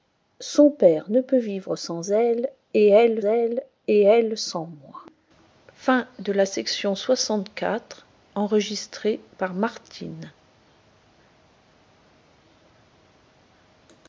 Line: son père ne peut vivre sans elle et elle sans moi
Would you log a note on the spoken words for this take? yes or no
yes